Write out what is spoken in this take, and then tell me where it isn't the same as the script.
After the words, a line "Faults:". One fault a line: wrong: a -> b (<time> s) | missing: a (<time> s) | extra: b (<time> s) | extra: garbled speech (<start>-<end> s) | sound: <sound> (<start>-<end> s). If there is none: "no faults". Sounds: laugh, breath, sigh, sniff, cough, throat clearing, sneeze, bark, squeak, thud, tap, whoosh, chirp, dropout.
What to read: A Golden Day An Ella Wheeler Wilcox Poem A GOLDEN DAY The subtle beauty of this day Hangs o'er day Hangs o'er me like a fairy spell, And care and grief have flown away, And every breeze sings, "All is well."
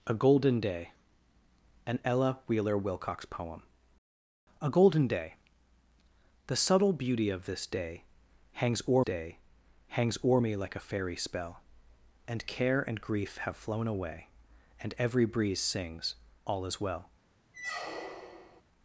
A Golden Day An Ella Wheeler Wilcox Poem A GOLDEN DAY The subtle beauty of this day Hangs o'er day Hangs o'er me like a fairy spell, And care and grief have flown away, And every breeze sings, "All is well."
Faults:
sound: squeak (17.5-18.6 s)